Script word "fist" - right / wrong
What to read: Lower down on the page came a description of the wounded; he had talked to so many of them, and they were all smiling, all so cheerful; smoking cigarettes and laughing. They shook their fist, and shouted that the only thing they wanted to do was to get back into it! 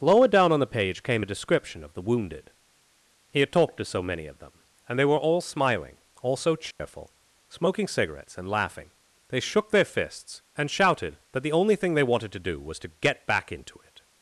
wrong